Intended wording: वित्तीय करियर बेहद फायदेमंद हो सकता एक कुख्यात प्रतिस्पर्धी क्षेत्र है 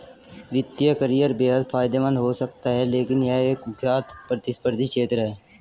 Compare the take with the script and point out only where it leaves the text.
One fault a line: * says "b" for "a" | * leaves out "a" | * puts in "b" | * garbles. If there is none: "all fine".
* puts in "है लेकिन यह"